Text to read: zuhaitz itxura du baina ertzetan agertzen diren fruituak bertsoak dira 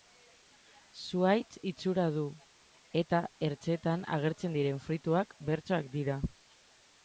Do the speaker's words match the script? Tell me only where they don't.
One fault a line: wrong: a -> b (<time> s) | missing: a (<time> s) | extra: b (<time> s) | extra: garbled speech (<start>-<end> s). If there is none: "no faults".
wrong: baina -> eta (3.0 s)